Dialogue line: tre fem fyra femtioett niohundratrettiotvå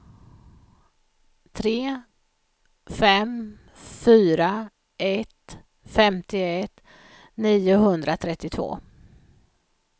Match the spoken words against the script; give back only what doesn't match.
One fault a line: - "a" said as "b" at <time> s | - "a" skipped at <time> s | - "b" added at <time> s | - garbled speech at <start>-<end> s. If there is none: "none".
- "ett" added at 5.0 s